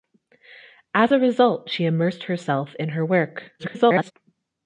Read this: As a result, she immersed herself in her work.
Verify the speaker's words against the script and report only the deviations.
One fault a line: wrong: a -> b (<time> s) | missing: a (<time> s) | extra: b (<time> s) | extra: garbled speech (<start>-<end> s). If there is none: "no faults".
extra: garbled speech (3.6-4.1 s)